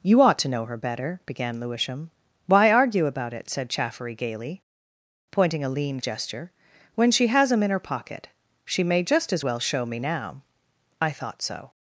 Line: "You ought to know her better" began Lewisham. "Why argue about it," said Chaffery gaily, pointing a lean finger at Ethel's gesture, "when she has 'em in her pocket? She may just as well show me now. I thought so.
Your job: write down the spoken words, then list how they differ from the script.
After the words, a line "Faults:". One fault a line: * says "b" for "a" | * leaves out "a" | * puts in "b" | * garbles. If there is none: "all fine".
"You ought to know her better" began Lewisham. "Why argue about it," said Chaffery gaily, pointing a lean gesture, "when she has 'em in her pocket? She may just as well show me now. I thought so.
Faults:
* leaves out "finger at Ethel's"